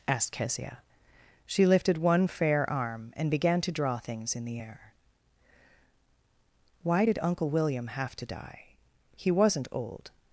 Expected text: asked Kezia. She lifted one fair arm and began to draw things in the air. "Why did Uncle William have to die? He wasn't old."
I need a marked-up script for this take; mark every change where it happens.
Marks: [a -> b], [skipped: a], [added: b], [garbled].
asked Kezia. She lifted one fair arm and began to draw things in the air. "Why did Uncle William have to die? He wasn't old."